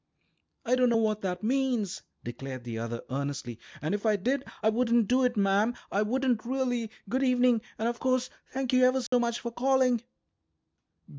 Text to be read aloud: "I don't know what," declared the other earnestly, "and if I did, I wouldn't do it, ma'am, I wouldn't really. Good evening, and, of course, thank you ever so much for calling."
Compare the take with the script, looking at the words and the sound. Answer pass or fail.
fail